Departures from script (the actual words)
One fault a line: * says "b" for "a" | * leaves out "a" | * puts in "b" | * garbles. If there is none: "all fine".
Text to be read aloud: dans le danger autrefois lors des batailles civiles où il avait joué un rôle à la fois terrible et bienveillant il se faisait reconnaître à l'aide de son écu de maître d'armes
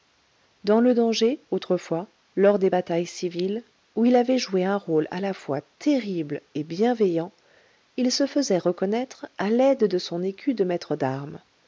all fine